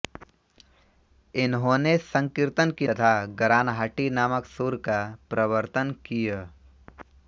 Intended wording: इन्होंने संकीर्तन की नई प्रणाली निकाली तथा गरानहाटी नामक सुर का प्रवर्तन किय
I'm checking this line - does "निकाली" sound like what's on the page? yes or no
no